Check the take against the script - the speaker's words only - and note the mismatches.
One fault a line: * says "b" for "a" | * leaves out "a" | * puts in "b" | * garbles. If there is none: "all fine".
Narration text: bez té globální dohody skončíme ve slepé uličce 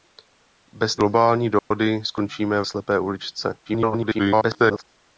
* leaves out "té"
* leaves out "ve"
* garbles